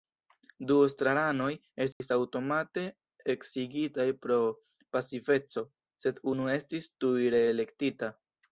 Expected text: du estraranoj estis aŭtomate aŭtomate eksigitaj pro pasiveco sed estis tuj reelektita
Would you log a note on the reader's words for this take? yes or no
yes